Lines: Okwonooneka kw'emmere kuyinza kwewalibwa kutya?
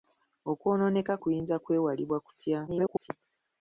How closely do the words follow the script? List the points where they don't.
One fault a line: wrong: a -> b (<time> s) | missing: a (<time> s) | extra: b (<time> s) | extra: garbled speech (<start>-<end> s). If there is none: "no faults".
missing: kw'emmere (1.1 s)
extra: garbled speech (2.7-3.1 s)